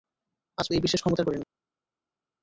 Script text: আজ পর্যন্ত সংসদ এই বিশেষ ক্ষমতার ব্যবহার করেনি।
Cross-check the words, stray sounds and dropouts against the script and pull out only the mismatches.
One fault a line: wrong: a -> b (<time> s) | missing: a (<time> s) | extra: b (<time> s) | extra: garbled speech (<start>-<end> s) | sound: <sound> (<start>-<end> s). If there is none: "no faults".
missing: পর্যন্ত সংসদ (0.7 s)
missing: ব্যবহার (1.3 s)